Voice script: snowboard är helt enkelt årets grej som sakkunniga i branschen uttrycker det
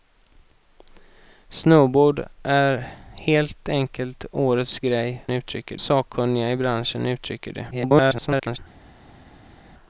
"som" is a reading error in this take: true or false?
true